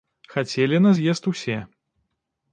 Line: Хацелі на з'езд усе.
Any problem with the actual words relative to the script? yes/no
no